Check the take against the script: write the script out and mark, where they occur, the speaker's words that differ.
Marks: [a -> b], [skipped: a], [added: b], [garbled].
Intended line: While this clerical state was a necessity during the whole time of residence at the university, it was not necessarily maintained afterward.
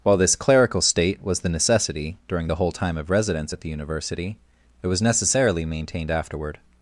While this clerical state was [a -> the] necessity during the whole time of residence at the university, it was [skipped: not] necessarily maintained afterward.